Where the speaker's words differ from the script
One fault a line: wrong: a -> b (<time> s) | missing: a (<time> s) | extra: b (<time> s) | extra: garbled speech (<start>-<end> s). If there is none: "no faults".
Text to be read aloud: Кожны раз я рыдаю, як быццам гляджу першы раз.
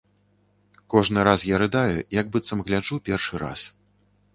no faults